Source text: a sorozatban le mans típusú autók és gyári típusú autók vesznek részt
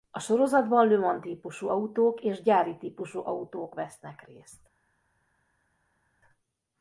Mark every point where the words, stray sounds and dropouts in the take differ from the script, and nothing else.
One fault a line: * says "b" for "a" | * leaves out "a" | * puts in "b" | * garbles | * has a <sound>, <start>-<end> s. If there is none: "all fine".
all fine